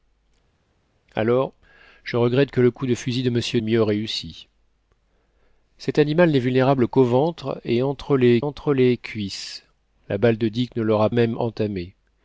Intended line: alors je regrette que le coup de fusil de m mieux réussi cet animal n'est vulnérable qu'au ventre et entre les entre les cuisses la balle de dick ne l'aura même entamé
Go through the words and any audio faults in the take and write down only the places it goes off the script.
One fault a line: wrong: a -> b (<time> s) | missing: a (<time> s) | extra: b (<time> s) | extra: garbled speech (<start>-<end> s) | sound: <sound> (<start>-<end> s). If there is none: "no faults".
no faults